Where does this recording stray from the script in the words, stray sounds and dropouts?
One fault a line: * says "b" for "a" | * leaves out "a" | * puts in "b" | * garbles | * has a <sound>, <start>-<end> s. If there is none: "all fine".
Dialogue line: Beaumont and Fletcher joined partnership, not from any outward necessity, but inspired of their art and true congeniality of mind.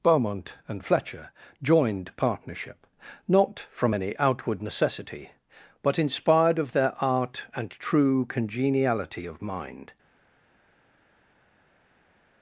all fine